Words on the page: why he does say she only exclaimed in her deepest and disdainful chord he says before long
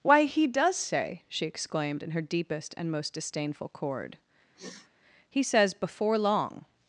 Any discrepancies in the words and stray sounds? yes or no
yes